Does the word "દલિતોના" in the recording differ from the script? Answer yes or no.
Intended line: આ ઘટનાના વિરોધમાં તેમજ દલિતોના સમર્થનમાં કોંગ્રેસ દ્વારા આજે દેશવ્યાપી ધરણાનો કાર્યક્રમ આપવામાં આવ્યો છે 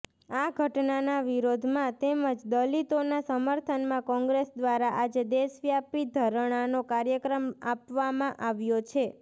no